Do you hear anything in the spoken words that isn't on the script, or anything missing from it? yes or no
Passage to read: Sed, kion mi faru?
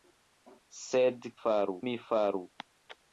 yes